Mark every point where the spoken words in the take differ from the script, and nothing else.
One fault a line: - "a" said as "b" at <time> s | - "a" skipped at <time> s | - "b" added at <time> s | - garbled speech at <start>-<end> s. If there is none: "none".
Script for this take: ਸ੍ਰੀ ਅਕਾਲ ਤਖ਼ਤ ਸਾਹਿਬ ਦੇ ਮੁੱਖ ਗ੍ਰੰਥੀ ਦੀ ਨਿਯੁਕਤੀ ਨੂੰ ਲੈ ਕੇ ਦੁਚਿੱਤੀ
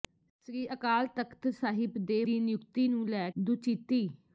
- "ਮੁੱਖ ਗ੍ਰੰਥੀ" skipped at 2.2 s
- "ਕੇ" skipped at 3.3 s